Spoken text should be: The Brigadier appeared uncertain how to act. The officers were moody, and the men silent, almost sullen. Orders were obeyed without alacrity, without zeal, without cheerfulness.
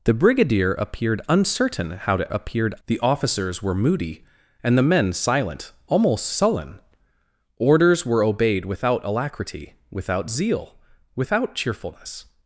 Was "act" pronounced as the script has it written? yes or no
no